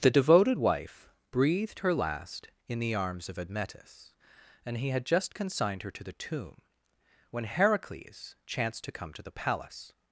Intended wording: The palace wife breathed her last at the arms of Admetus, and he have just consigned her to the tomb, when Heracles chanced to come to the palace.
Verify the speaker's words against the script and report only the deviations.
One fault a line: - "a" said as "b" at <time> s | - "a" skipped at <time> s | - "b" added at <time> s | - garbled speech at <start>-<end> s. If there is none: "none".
- "palace" said as "devoted" at 0.1 s
- "at" said as "in" at 2.7 s
- "have" said as "had" at 4.9 s